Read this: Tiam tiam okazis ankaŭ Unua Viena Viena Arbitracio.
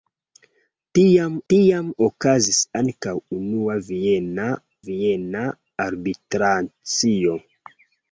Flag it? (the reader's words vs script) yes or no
no